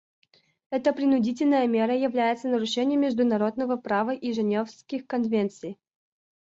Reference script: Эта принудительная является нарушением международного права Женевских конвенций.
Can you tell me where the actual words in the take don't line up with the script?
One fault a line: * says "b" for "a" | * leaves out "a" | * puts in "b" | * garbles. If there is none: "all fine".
* puts in "мера"
* puts in "и"